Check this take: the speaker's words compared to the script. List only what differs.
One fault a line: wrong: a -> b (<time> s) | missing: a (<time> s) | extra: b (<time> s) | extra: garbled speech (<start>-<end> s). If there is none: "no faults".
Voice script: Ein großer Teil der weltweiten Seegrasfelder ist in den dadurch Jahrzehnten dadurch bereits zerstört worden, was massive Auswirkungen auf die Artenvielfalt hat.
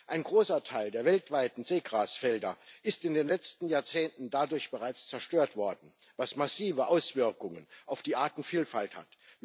wrong: dadurch -> letzten (3.3 s)